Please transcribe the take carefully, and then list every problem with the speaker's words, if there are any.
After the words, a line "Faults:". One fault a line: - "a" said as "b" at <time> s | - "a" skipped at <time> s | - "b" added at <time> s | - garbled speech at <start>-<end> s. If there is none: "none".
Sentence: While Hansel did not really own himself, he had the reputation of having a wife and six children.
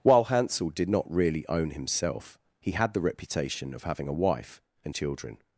While Hansel did not really own himself, he had the reputation of having a wife and children.
Faults:
- "six" skipped at 5.0 s